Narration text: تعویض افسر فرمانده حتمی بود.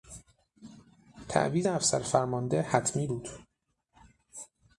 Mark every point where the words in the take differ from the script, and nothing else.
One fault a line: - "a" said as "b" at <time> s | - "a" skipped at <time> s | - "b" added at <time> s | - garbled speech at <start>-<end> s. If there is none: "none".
none